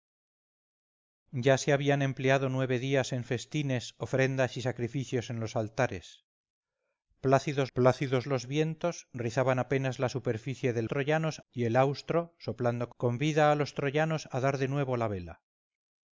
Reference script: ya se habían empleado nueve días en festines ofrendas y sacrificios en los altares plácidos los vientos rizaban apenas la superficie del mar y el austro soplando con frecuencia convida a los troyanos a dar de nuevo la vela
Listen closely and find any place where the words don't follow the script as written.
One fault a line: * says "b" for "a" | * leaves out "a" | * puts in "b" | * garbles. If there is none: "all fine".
* puts in "plácidos"
* says "troyanos" for "mar"
* leaves out "con frecuencia"